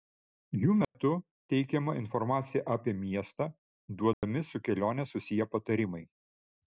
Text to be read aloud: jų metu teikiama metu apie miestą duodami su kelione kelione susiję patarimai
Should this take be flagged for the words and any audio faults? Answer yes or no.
yes